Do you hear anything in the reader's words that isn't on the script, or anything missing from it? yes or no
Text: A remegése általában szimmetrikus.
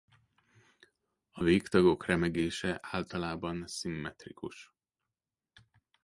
yes